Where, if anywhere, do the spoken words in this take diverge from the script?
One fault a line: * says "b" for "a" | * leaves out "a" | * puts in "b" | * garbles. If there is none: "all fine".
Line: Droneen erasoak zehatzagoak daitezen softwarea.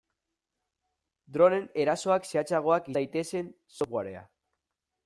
all fine